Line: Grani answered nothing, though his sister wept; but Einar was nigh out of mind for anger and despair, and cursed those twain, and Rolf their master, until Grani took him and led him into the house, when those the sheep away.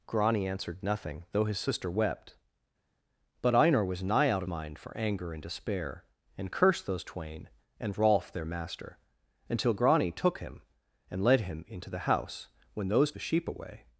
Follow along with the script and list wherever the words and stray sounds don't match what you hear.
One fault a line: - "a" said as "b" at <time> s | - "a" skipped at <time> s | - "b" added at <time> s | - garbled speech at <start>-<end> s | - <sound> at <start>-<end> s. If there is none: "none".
none